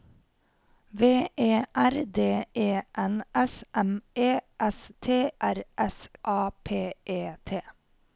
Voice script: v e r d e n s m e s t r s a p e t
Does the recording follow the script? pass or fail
pass